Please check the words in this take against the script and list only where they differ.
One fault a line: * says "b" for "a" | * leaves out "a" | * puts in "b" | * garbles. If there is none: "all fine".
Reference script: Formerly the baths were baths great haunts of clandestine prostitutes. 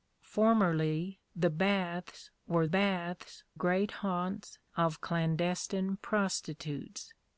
all fine